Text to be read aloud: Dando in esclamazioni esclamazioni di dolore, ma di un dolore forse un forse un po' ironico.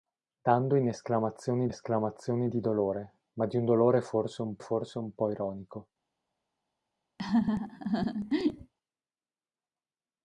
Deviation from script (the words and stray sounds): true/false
true